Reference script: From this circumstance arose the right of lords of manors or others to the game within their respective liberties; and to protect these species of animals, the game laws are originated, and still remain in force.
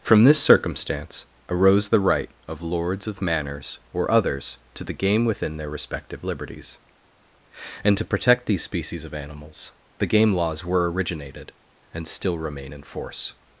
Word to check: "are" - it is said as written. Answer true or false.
false